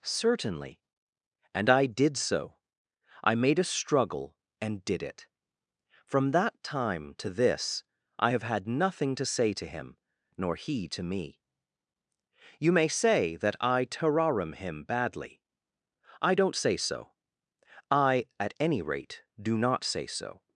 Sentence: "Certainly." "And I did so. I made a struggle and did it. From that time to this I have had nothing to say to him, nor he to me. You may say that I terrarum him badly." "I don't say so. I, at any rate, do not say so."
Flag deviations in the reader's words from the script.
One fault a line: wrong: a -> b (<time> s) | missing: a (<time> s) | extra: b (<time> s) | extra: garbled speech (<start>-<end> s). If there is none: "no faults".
no faults